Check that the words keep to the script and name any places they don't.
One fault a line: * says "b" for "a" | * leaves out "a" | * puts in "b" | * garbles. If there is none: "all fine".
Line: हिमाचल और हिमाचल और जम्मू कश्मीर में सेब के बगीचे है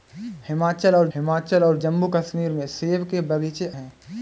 all fine